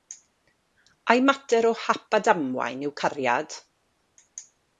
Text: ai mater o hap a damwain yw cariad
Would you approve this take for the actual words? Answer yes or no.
yes